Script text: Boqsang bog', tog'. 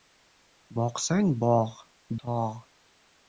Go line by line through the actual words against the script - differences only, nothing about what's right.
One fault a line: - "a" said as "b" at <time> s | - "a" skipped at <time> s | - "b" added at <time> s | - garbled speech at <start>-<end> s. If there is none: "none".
none